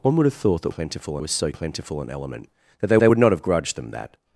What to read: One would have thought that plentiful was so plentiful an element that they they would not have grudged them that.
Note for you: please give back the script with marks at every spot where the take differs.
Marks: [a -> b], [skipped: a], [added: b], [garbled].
One would have thought that plentiful was so plentiful an element that they they would not have grudged them that.